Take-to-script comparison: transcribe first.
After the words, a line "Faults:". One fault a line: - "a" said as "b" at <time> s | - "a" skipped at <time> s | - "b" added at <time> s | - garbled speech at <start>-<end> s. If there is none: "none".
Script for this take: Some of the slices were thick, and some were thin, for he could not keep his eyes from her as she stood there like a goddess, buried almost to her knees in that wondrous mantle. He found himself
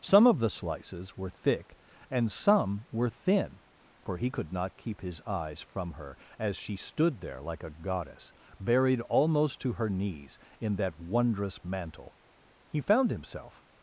Some of the slices were thick, and some were thin, for he could not keep his eyes from her as she stood there like a goddess, buried almost to her knees in that wondrous mantle. He found himself
Faults:
none